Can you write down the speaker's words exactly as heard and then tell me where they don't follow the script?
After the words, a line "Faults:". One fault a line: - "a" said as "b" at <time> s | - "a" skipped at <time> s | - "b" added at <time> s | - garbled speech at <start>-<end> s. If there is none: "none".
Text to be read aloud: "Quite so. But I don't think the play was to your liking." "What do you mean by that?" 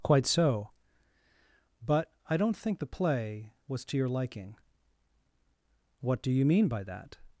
"Quite so. But I don't think the play was to your liking." "What do you mean by that?"
Faults:
none